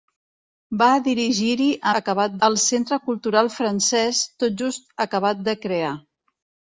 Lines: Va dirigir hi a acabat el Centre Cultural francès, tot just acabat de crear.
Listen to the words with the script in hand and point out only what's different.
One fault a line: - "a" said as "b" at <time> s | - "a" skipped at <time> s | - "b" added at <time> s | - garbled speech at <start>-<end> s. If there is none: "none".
none